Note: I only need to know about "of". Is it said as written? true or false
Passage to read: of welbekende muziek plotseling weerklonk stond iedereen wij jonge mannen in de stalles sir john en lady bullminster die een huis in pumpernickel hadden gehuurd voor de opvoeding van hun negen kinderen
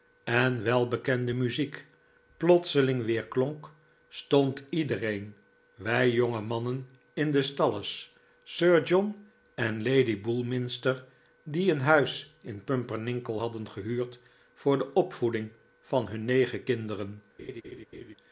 false